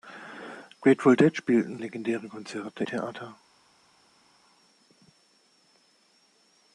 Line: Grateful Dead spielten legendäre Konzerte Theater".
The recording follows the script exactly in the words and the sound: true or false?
true